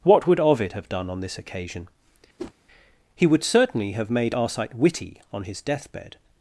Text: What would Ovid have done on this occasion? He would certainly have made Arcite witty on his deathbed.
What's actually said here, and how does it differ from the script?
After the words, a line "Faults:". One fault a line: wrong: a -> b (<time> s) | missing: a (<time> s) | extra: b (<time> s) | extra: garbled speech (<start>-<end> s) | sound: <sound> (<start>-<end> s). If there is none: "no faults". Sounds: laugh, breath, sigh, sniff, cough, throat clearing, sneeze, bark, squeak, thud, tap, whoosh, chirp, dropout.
What would Ovid have done on this occasion? He would certainly have made Arcite witty on his deathbed.
Faults:
sound: whoosh (2.4-2.5 s)